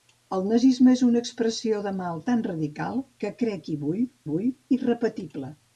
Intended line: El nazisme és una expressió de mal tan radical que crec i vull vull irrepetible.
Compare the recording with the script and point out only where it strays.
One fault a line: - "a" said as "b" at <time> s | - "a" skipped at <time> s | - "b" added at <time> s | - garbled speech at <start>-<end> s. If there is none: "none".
none